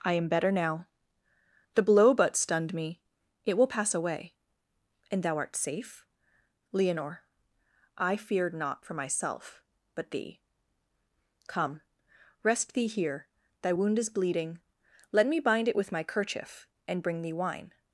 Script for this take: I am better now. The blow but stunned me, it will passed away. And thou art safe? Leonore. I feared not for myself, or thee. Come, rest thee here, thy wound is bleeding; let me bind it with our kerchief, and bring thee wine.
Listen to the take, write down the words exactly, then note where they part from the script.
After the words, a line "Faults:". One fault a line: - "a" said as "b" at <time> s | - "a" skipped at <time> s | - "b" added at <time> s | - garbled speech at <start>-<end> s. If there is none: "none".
I am better now. The blow but stunned me, it will pass away. And thou art safe? Leonore. I feared not for myself, but thee. Come, rest thee here, thy wound is bleeding; let me bind it with my kerchief, and bring thee wine.
Faults:
- "passed" said as "pass" at 3.7 s
- "or" said as "but" at 9.9 s
- "our" said as "my" at 15.9 s